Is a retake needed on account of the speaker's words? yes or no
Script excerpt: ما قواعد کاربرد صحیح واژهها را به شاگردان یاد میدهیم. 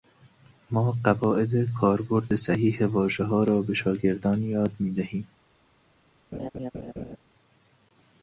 no